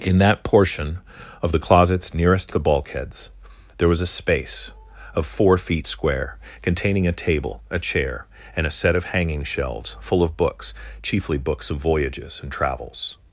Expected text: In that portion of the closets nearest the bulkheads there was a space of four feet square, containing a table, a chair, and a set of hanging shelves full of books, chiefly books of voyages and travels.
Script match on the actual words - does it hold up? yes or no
yes